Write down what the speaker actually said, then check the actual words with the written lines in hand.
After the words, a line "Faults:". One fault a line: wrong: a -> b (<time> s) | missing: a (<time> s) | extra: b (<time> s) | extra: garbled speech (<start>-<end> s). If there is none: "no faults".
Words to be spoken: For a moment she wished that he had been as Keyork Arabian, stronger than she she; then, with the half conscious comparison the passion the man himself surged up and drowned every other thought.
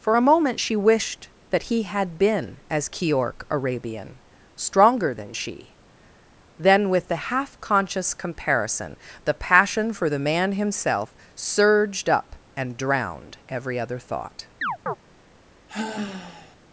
For a moment she wished that he had been as Keyork Arabian, stronger than she; then, with the half conscious comparison the passion for the man himself surged up and drowned every other thought.
Faults:
missing: she (5.8 s)
extra: for (9.9 s)